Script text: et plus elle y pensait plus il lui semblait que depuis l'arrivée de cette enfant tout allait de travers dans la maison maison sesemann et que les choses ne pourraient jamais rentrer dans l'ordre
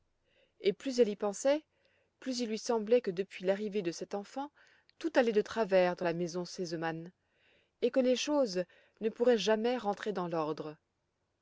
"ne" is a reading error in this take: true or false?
false